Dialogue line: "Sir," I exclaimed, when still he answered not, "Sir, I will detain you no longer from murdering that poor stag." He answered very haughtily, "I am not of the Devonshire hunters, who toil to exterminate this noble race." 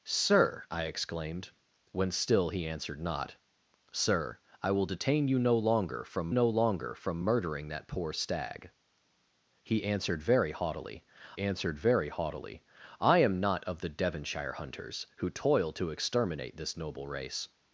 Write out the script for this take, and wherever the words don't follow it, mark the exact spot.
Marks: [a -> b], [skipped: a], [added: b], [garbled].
"Sir," I exclaimed, when still he answered not, "Sir, I will detain you no longer from [added: no longer from] murdering that poor stag." He answered very haughtily, [added: answered very haughtily] "I am not of the Devonshire hunters, who toil to exterminate this noble race."